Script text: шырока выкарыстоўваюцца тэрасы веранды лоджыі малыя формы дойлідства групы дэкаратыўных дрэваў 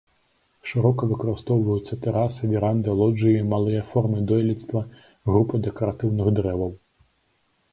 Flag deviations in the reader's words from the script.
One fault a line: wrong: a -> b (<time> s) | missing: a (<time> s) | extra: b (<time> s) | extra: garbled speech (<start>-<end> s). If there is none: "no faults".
no faults